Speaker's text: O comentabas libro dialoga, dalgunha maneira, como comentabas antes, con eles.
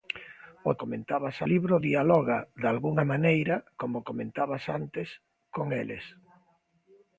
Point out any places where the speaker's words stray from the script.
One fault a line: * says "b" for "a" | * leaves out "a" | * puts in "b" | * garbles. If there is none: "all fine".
all fine